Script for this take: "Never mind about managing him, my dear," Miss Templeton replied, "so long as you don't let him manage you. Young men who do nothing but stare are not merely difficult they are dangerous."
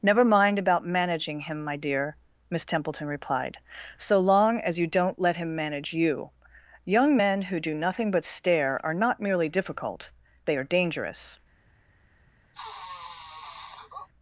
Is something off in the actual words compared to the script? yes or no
no